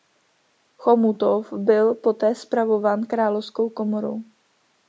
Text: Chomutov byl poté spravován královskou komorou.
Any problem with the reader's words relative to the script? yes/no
no